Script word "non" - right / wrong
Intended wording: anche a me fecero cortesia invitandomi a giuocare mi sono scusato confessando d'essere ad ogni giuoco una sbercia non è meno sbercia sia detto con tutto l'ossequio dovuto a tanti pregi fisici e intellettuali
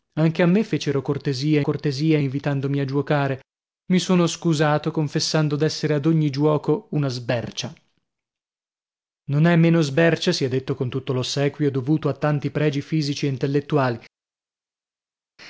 right